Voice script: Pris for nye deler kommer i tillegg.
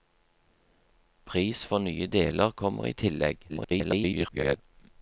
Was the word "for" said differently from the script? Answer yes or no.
no